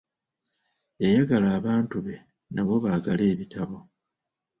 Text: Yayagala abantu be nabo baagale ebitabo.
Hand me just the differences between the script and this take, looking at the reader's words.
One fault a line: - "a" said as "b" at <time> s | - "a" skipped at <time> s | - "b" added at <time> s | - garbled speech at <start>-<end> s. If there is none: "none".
none